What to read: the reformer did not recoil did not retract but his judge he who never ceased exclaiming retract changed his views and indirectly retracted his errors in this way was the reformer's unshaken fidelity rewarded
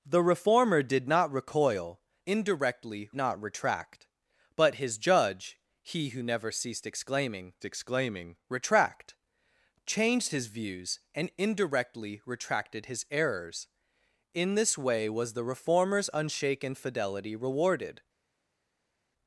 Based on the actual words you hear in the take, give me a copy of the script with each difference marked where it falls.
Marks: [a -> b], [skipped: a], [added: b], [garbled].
the reformer did not recoil [did -> indirectly] not retract but his judge he who never ceased exclaiming [added: exclaiming] retract changed his views and indirectly retracted his errors in this way was the reformer's unshaken fidelity rewarded